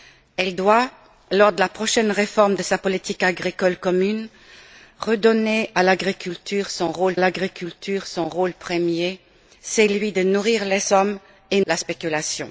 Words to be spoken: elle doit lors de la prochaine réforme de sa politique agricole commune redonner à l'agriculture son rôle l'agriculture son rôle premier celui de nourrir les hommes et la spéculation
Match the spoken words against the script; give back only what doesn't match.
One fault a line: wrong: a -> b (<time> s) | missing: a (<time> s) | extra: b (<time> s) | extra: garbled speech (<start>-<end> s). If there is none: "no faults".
no faults